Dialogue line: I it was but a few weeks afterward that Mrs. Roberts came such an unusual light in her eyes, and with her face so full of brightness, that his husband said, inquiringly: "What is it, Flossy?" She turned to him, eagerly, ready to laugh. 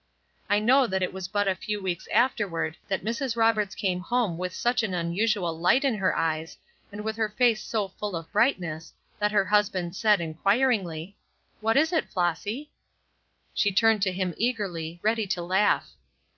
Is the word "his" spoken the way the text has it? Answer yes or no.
no